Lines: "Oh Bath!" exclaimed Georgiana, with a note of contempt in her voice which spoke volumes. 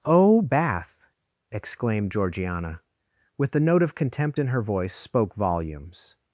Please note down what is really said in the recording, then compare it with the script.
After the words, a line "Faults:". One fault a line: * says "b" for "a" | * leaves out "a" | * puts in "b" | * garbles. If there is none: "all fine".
"Oh Bath!" exclaimed Georgiana, with the note of contempt in her voice spoke volumes.
Faults:
* says "the" for "a"
* leaves out "which"